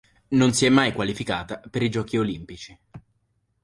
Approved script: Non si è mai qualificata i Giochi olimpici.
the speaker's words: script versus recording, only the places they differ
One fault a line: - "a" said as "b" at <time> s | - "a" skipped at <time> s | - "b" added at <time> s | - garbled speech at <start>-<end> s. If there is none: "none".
- "per" added at 1.6 s